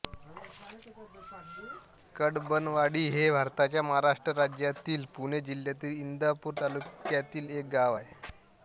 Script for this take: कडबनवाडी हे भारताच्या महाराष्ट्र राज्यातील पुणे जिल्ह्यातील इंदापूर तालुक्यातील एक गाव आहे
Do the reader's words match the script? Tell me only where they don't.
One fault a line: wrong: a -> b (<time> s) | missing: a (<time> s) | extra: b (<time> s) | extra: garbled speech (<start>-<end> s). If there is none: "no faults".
no faults